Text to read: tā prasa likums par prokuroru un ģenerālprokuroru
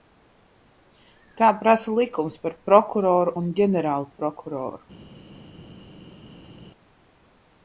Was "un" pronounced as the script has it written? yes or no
yes